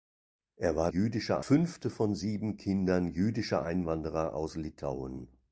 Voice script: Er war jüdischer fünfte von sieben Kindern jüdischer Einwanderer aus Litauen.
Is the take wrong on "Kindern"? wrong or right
right